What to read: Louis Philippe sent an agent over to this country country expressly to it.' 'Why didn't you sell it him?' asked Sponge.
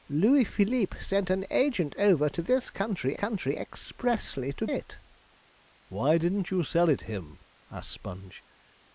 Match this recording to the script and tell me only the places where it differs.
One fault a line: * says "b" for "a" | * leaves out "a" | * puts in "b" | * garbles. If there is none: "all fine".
all fine